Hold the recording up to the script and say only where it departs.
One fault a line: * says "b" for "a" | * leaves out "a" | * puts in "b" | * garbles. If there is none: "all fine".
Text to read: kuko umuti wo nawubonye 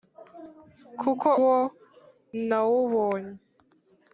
* leaves out "umuti"